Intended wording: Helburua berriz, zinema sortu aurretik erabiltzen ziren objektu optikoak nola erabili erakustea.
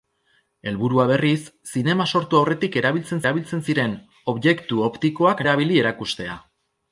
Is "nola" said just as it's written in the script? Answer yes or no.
no